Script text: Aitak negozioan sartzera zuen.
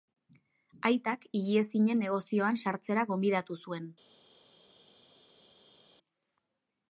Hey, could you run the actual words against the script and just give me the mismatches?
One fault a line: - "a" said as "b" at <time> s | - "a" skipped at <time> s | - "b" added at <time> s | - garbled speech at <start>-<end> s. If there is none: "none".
- "higiezinen" added at 1.4 s
- "gonbidatu" added at 3.1 s